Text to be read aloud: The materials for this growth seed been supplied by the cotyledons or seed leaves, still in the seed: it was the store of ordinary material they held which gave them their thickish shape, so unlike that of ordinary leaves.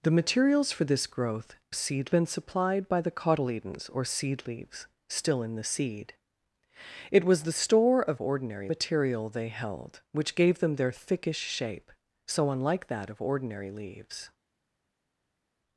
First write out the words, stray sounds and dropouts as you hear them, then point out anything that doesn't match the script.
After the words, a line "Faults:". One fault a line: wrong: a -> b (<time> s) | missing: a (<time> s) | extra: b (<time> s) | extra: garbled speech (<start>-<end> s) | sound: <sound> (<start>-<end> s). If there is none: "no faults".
The materials for this growth seed been supplied by the cotyledons or seed leaves, still in the seed: it was the store of ordinary material they held which gave them their thickish shape, so unlike that of ordinary leaves.
Faults:
no faults